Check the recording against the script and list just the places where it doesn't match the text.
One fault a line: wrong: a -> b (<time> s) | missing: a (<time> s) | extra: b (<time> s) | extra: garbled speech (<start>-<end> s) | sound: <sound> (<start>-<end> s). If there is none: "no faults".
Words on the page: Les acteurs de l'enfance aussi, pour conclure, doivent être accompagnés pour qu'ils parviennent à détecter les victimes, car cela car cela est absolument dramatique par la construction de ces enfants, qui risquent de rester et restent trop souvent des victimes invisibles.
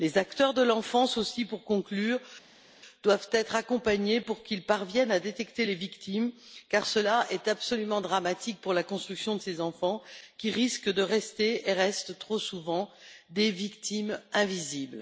missing: car cela (7.2 s)
wrong: par -> pour (8.6 s)